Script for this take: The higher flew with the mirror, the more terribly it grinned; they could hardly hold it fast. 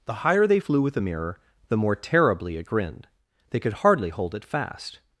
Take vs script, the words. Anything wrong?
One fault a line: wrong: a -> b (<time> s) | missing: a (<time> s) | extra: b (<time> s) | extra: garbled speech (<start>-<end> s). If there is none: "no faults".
extra: they (0.5 s)